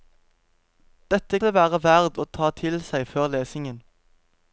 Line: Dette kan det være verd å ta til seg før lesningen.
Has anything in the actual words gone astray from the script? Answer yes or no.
yes